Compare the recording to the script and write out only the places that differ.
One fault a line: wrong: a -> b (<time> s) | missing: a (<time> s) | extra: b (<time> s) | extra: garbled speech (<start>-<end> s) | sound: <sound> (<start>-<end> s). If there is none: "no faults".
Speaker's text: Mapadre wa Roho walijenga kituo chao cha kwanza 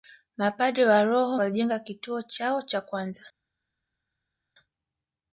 no faults